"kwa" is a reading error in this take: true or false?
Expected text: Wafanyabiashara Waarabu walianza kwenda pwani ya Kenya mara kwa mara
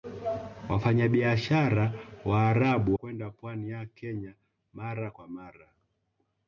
false